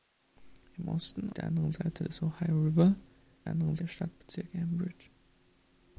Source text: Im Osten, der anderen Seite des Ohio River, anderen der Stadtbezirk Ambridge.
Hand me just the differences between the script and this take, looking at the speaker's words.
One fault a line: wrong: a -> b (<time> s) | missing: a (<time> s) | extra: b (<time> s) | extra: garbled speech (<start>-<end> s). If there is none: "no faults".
no faults